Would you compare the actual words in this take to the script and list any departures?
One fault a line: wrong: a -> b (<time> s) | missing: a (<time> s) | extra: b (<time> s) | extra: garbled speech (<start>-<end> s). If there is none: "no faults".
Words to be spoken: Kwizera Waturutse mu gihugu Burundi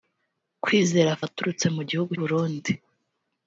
no faults